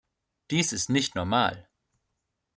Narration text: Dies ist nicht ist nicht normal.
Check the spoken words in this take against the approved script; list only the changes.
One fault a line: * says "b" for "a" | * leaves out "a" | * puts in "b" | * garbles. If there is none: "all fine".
* leaves out "ist nicht"